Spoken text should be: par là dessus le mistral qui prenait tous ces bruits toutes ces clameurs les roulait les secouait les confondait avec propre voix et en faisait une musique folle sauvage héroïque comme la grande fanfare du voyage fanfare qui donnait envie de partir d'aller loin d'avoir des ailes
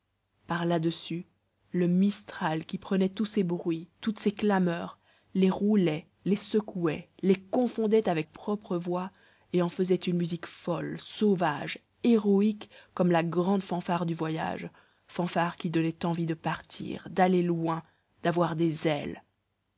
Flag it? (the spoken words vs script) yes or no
no